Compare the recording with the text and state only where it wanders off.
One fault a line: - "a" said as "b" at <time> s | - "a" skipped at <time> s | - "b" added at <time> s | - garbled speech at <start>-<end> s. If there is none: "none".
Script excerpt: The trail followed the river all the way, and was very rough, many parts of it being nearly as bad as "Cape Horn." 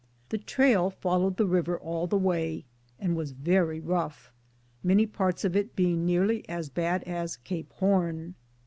none